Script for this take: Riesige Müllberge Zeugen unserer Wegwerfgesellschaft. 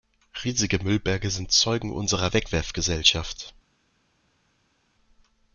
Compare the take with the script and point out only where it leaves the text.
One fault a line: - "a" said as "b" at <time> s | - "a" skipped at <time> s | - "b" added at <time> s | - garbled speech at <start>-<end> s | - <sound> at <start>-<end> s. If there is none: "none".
- "sind" added at 1.3 s